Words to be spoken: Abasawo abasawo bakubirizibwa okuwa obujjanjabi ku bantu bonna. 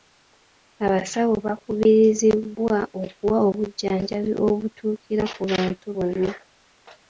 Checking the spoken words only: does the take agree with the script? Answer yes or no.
no